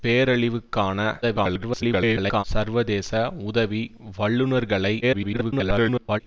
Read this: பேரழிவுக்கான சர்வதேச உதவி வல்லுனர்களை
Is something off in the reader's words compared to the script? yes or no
yes